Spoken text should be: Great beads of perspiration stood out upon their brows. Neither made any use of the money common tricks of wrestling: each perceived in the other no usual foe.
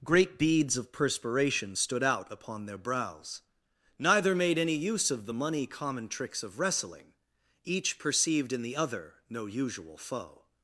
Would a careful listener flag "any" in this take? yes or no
no